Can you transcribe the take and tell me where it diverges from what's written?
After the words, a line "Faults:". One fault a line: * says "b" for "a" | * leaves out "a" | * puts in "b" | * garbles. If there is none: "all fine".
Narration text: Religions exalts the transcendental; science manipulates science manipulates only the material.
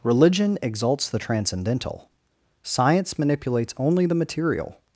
Religion exalts the transcendental; science manipulates only the material.
Faults:
* says "Religion" for "Religions"
* leaves out "science manipulates"